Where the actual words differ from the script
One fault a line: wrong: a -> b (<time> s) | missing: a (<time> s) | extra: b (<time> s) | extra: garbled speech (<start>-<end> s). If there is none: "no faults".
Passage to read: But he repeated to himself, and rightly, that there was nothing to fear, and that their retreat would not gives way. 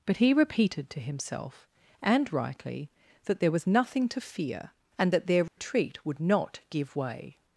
wrong: gives -> give (6.7 s)